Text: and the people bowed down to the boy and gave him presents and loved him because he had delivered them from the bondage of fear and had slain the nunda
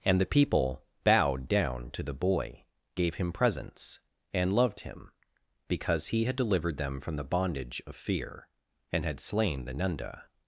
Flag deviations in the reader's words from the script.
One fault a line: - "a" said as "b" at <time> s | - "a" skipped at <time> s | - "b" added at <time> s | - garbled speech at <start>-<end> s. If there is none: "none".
- "and" skipped at 2.6 s